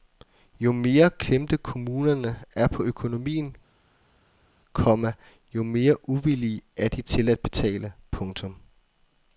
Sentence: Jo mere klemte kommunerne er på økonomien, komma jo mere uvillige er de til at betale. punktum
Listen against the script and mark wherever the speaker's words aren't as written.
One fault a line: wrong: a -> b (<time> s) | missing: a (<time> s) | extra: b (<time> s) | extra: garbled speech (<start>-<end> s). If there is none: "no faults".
no faults